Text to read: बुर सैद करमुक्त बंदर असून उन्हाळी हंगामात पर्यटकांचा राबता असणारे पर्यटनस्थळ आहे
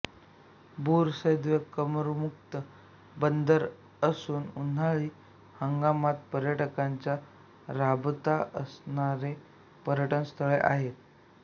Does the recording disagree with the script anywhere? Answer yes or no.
no